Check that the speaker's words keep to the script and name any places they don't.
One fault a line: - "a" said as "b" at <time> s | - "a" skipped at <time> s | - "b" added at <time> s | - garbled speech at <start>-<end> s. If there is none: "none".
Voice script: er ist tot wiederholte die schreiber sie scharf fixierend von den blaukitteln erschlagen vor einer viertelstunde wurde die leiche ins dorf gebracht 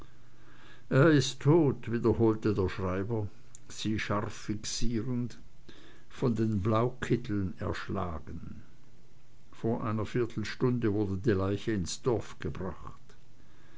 - "die" said as "der" at 2.5 s